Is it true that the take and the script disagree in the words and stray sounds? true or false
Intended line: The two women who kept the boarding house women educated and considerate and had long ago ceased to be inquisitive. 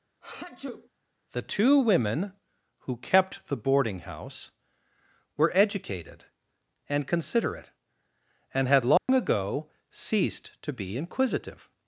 true